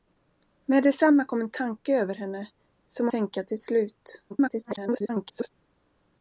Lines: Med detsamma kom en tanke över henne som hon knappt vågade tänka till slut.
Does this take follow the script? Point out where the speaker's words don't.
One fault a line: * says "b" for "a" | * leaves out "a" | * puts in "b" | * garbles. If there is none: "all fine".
* leaves out "hon knappt vågade"
* garbles